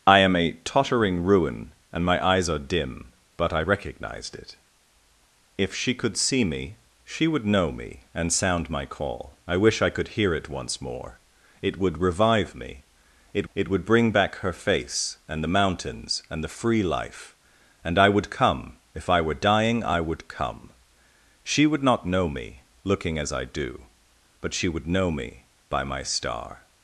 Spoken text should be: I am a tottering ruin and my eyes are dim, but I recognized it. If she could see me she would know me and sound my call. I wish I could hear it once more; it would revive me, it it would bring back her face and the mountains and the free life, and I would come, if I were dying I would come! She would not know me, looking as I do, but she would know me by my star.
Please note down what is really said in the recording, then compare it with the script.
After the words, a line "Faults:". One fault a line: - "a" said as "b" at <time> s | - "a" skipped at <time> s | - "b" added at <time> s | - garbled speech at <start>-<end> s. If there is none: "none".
I am a tottering ruin and my eyes are dim, but I recognized it. If she could see me she would know me and sound my call. I wish I could hear it once more; it would revive me, it it would bring back her face and the mountains and the free life, and I would come, if I were dying I would come! She would not know me, looking as I do, but she would know me by my star.
Faults:
none